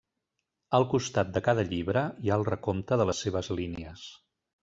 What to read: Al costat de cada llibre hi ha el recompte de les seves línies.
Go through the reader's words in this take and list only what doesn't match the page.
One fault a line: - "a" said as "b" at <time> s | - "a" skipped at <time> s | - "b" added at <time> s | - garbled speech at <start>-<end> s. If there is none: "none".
none